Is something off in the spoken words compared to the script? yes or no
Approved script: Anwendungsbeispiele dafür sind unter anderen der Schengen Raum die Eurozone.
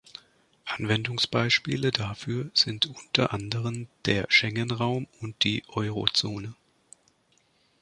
yes